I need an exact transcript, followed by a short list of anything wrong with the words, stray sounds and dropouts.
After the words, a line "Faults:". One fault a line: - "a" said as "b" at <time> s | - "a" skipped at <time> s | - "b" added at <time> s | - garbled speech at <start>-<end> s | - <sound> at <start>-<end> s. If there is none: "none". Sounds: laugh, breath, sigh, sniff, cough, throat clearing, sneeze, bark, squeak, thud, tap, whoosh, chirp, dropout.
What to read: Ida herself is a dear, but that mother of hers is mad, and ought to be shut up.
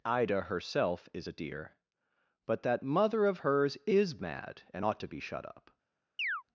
Ida herself is a dear, but that mother of hers is mad, and ought to be shut up.
Faults:
- chirp at 6.2-6.4 s